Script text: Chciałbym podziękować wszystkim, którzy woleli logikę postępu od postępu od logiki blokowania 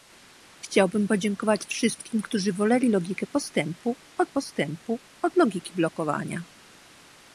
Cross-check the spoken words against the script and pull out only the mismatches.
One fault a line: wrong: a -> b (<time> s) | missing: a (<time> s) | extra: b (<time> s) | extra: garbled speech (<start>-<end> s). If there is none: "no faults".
no faults